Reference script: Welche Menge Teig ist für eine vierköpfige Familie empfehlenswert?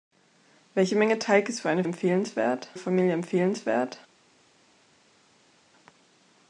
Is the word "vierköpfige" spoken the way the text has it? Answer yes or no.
no